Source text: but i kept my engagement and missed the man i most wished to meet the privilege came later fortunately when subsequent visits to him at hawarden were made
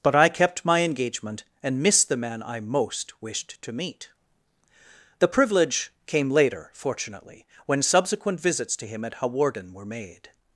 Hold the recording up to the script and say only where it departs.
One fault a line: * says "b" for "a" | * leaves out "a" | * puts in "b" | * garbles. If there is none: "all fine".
all fine